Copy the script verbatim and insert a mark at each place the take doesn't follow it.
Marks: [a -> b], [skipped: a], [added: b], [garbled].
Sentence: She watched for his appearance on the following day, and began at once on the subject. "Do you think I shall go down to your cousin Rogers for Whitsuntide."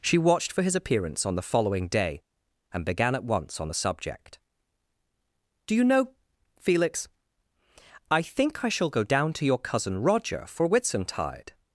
She watched for his appearance on the following day, and began at once on the subject. "Do you [added: know Felix I] think I shall go down to your cousin [Rogers -> Roger] for Whitsuntide."